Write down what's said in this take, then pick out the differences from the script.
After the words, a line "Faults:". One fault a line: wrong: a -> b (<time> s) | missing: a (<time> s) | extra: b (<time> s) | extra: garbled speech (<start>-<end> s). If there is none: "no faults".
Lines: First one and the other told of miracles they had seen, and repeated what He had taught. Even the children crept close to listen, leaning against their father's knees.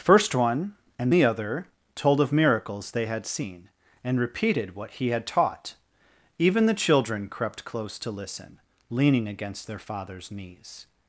First one and the other told of miracles they had seen, and repeated what He had taught. Even the children crept close to listen, leaning against their father's knees.
Faults:
no faults